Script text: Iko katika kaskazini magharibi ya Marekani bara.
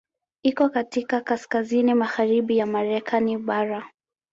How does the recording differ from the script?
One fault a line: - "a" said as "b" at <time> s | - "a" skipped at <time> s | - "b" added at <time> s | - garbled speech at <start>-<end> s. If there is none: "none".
none